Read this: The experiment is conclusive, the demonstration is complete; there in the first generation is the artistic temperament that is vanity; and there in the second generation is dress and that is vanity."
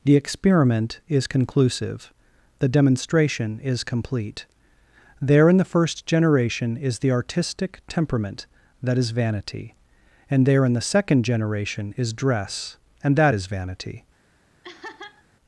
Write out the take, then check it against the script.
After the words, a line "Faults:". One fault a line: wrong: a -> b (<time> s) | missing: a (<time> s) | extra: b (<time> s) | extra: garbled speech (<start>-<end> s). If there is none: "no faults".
The experiment is conclusive, the demonstration is complete; there in the first generation is the artistic temperament that is vanity; and there in the second generation is dress and that is vanity."
Faults:
no faults